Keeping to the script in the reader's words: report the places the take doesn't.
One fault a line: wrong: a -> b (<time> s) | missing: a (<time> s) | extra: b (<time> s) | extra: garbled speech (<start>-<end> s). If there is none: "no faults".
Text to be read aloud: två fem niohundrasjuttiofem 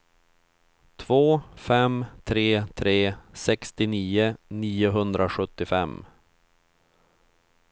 extra: tre tre sextionio (2.2 s)